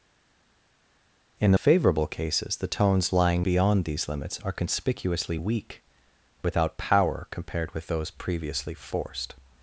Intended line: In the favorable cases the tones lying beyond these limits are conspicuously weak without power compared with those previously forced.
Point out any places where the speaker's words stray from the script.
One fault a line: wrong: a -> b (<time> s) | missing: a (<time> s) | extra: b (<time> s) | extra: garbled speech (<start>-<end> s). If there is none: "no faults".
no faults